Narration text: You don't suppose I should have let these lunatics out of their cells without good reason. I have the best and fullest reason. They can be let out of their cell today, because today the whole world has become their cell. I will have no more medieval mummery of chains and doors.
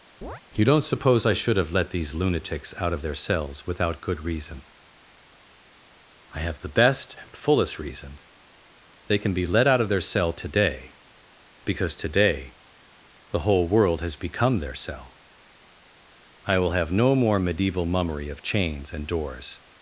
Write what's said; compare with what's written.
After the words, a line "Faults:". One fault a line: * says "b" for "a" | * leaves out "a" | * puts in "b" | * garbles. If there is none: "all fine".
You don't suppose I should have let these lunatics out of their cells without good reason. I have the best and fullest reason. They can be let out of their cell today, because today the whole world has become their cell. I will have no more medieval mummery of chains and doors.
Faults:
all fine